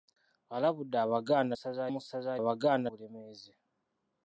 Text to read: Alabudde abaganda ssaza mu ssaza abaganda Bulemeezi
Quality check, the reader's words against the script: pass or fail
pass